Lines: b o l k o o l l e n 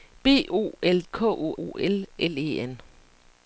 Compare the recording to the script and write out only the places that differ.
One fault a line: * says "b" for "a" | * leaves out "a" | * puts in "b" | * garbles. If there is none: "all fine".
all fine